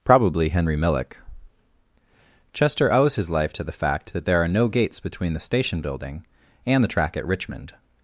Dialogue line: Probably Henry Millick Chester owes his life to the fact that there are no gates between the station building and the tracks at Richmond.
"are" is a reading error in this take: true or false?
false